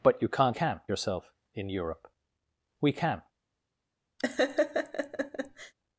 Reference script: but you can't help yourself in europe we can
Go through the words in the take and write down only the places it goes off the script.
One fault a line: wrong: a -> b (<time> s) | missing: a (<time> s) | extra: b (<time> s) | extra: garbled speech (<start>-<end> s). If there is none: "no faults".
wrong: help -> can (0.5 s)